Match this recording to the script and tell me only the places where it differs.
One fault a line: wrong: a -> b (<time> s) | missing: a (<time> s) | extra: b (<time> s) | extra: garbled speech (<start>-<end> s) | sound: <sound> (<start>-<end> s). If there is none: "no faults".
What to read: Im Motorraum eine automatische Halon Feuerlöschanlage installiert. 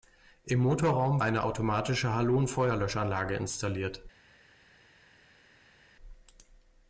no faults